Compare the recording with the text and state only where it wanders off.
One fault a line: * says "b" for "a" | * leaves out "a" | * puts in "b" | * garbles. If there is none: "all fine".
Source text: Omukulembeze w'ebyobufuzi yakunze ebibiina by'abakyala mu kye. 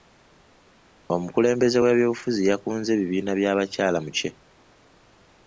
all fine